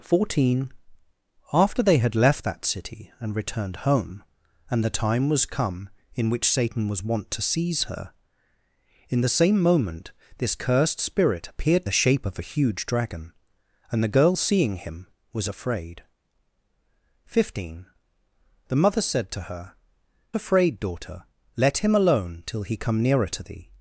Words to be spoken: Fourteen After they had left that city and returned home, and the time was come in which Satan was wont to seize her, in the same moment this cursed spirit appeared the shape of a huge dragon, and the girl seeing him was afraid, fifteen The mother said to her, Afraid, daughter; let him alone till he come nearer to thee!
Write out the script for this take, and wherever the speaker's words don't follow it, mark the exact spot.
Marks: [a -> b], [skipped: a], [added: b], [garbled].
Fourteen After they had left that city and returned home, and the time was come in which Satan was wont to seize her, in the same moment this cursed spirit appeared the shape of a huge dragon, and the girl seeing him was afraid, fifteen The mother said to her, Afraid, daughter; let him alone till he come nearer to thee!